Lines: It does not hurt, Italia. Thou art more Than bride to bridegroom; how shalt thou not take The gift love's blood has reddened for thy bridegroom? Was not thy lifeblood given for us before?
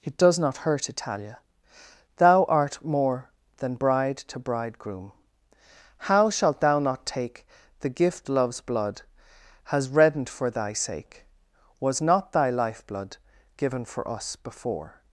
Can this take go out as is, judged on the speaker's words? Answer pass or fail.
fail